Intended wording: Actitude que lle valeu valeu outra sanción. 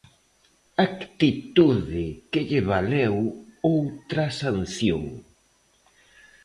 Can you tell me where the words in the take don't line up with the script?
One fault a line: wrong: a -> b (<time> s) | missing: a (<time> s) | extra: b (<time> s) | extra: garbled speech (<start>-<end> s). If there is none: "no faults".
missing: valeu (3.1 s)